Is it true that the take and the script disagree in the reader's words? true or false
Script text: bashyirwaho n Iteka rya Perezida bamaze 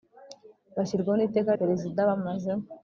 true